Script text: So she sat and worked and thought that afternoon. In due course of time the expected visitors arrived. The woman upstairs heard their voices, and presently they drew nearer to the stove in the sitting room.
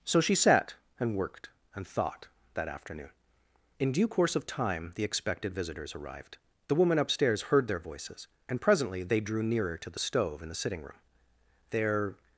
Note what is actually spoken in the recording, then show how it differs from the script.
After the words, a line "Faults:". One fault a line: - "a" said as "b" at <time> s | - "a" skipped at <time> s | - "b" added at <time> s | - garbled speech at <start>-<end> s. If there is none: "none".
So she sat and worked and thought that afternoon. In due course of time the expected visitors arrived. The woman upstairs heard their voices, and presently they drew nearer to the stove in the sitting room. Their
Faults:
- "Their" added at 11.7 s